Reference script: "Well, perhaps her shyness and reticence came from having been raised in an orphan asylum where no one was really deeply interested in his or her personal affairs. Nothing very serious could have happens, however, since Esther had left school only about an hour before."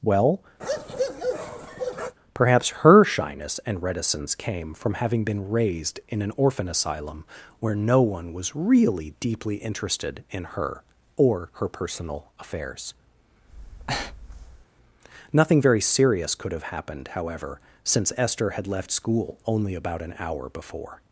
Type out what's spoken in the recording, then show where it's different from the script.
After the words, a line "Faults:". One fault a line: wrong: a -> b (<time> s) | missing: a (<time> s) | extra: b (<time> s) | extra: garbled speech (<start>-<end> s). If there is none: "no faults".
"Well, perhaps her shyness and reticence came from having been raised in an orphan asylum where no one was really deeply interested in her or her personal affairs. Nothing very serious could have happened, however, since Esther had left school only about an hour before."
Faults:
wrong: his -> her (10.4 s)
wrong: happens -> happened (16.6 s)